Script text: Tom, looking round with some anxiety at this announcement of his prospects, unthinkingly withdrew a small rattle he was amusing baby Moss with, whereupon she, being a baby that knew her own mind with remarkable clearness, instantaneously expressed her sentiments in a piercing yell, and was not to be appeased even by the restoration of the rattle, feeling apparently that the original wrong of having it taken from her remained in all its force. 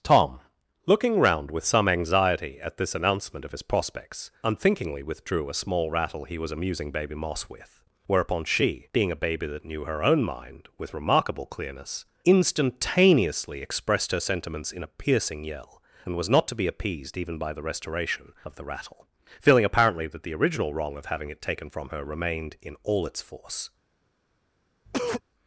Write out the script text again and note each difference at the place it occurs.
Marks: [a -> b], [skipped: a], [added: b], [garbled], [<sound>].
Tom, looking round with some anxiety at this announcement of his prospects, unthinkingly withdrew a small rattle he was amusing baby Moss with, whereupon she, being a baby that knew her own mind with remarkable clearness, instantaneously expressed her sentiments in a piercing yell, and was not to be appeased even by the restoration of the rattle, feeling apparently that the original wrong of having it taken from her remained in all its force. [cough]